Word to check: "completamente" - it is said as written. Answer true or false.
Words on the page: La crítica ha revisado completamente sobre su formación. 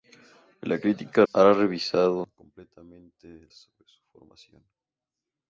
true